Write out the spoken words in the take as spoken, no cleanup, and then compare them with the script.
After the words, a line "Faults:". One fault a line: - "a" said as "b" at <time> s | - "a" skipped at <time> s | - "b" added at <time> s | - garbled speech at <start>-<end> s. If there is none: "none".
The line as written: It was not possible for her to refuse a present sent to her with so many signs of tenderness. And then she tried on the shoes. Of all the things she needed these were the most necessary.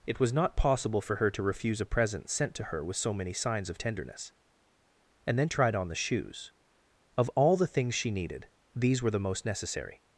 It was not possible for her to refuse a present sent to her with so many signs of tenderness. And then tried on the shoes. Of all the things she needed these were the most necessary.
Faults:
- "she" skipped at 5.5 s